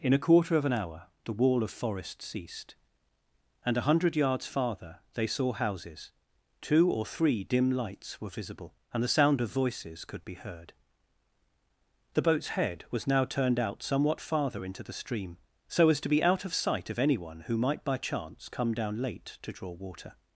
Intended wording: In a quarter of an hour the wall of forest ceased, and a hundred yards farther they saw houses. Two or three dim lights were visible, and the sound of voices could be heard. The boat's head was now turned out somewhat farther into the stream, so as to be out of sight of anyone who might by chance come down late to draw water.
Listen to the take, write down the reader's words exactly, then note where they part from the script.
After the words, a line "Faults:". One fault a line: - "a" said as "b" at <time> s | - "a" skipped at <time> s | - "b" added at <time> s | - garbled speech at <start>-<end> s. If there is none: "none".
In a quarter of an hour the wall of forest ceased, and a hundred yards farther they saw houses. Two or three dim lights were visible, and the sound of voices could be heard. The boat's head was now turned out somewhat farther into the stream, so as to be out of sight of anyone who might by chance come down late to draw water.
Faults:
none